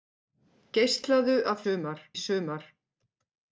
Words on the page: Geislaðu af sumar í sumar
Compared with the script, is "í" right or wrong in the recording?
right